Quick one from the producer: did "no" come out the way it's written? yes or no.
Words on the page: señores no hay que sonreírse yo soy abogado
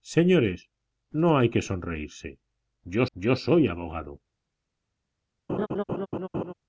yes